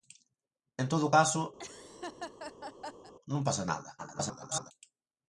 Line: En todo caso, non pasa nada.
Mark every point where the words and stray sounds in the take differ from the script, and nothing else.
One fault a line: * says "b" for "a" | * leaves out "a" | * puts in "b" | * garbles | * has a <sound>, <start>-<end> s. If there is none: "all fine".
* has a laugh, 1.6-3.1 s
* garbles